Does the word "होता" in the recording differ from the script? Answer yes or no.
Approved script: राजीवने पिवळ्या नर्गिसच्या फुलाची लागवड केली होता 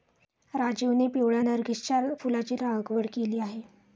yes